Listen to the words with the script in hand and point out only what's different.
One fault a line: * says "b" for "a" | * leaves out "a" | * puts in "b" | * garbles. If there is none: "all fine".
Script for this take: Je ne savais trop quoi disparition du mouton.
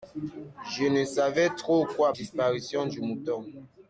all fine